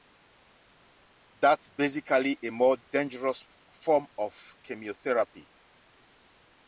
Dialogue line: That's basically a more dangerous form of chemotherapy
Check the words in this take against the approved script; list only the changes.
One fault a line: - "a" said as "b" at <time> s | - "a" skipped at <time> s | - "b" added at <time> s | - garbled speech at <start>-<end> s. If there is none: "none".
none